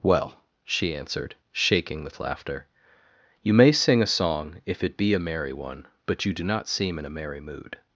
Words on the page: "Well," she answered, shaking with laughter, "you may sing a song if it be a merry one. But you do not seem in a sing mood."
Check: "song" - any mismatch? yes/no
no